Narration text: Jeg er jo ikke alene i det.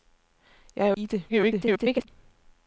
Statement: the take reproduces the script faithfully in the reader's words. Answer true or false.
false